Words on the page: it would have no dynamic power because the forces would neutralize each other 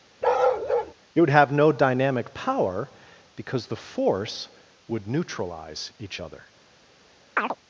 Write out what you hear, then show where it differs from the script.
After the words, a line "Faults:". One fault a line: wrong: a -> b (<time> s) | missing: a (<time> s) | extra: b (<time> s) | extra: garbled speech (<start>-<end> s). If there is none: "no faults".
it would have no dynamic power because the force would neutralize each other
Faults:
wrong: forces -> force (3.8 s)